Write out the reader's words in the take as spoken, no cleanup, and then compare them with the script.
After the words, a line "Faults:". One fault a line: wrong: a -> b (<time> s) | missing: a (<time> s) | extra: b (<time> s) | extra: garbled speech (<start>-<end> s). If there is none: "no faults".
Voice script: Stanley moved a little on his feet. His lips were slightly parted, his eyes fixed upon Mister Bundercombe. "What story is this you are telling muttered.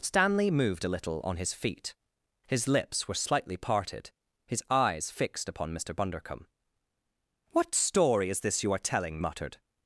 Stanley moved a little on his feet. His lips were slightly parted, his eyes fixed upon Mister Bundercombe. "What story is this you are telling muttered.
Faults:
no faults